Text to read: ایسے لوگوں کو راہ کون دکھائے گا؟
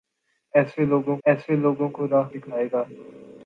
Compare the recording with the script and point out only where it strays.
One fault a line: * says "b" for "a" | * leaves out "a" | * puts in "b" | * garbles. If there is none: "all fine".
* puts in "ایسے لوگوں"
* leaves out "کون"